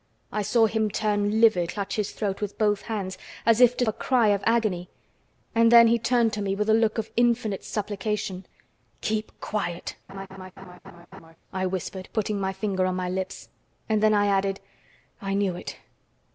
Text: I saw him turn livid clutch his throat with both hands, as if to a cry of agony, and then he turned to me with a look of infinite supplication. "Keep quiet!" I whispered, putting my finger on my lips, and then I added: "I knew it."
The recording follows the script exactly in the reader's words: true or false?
true